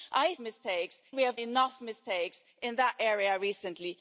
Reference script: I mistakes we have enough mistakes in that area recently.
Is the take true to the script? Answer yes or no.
yes